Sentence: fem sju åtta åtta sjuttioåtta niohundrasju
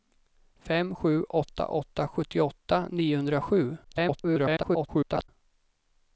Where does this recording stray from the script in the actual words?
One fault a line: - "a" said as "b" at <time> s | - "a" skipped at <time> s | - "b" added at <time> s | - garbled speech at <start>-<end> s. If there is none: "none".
- garbled speech at 3.8-5.3 s